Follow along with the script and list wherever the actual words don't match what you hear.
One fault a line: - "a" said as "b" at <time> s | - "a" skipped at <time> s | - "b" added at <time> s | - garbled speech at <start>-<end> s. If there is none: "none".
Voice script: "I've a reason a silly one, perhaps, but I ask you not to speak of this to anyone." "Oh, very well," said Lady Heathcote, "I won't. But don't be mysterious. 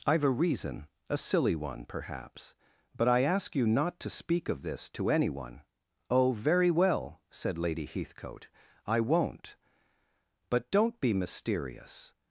none